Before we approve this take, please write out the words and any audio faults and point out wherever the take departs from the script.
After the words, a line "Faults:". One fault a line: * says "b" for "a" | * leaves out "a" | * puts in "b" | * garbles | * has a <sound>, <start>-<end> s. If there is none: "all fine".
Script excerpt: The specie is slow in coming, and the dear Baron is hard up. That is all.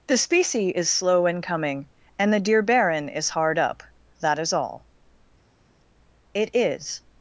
The specie is slow in coming, and the dear Baron is hard up. That is all. "'It is
Faults:
* puts in "It is"